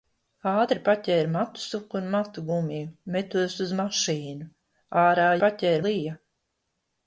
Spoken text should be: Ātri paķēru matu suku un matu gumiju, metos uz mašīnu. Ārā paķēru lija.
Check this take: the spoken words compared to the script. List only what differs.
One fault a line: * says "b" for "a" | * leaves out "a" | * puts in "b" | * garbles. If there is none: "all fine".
all fine